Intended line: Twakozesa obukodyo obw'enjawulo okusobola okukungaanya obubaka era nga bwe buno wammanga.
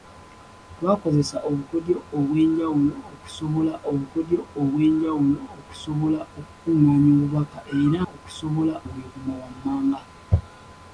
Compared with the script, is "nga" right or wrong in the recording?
wrong